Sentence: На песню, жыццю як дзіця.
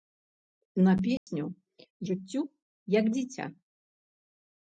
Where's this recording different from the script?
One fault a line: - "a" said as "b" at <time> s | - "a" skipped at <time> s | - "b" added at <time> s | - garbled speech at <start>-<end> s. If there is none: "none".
none